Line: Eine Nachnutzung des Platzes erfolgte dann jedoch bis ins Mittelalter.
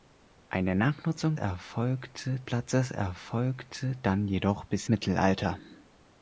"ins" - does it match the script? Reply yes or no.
no